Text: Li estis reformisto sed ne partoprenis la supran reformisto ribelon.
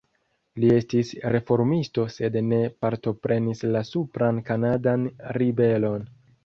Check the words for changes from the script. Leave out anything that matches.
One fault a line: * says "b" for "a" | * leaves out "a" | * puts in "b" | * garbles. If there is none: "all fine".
* says "kanadan" for "reformisto"